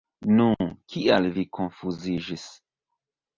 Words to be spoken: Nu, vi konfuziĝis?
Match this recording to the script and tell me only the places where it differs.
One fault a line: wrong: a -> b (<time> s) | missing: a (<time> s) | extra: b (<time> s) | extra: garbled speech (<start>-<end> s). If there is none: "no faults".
extra: kial (0.9 s)